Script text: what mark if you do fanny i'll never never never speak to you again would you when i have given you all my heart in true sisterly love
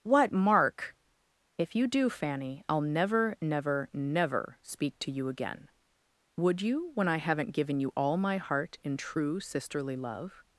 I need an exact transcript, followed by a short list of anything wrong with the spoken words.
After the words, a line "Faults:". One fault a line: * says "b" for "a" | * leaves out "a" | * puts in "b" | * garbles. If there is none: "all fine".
what mark if you do fanny i'll never never never speak to you again would you when i haven't given you all my heart in true sisterly love
Faults:
* says "haven't" for "have"